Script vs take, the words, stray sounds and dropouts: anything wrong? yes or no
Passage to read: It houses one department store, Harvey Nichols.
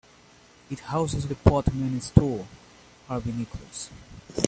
yes